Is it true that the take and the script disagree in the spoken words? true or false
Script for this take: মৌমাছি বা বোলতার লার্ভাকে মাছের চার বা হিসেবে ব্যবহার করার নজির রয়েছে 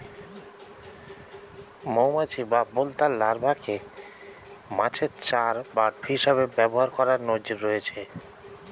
false